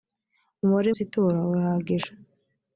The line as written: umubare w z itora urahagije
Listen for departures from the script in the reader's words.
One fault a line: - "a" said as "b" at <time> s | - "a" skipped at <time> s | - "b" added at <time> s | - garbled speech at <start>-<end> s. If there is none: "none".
none